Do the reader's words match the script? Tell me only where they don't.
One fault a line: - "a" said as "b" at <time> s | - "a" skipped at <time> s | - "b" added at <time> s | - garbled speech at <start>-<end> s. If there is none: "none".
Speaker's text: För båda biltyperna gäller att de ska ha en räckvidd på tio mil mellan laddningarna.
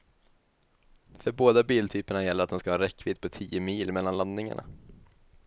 none